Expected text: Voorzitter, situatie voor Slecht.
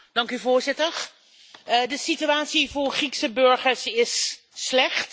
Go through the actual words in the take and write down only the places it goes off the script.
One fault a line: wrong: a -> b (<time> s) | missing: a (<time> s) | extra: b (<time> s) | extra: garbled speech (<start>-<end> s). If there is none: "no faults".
extra: de (1.9 s)
extra: Griekse burgers is (2.9 s)